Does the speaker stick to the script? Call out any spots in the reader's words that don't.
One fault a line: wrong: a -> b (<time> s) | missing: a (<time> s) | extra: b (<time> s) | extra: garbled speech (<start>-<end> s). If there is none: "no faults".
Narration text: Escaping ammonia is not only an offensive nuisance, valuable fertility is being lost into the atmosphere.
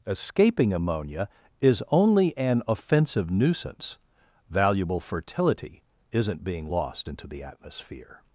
missing: not (1.8 s)
wrong: is -> isn't (6.1 s)